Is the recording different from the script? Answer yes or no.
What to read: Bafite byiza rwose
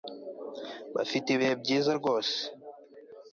yes